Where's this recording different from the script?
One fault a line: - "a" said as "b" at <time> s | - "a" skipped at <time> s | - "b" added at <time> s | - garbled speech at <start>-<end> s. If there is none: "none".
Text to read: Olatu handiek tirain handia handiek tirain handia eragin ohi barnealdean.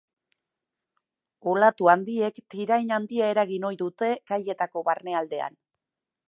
- "handiek tirain handia eragin ohi" said as "eragin ohi dute kaietako" at 3.4 s